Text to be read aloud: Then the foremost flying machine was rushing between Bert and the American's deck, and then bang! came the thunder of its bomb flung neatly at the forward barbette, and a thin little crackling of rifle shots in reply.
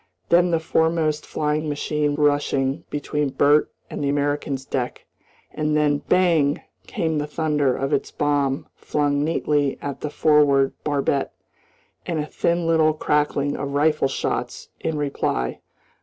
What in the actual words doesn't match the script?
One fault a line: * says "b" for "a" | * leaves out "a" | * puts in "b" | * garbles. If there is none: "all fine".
* leaves out "was"